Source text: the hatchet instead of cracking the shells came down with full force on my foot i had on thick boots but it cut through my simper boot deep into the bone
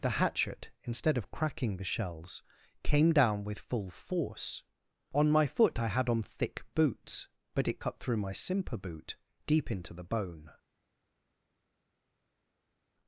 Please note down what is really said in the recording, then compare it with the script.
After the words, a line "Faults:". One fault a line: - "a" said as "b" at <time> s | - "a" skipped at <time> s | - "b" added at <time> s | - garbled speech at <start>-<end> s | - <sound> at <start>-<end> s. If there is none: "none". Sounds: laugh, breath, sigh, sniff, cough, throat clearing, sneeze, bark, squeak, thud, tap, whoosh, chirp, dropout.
the hatchet instead of cracking the shells came down with full force on my foot i had on thick boots but it cut through my simper boot deep into the bone
Faults:
none